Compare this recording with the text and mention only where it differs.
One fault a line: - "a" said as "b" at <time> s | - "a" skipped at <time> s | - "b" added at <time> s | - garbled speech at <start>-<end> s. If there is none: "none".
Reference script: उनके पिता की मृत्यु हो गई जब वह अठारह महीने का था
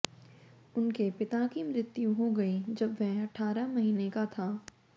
none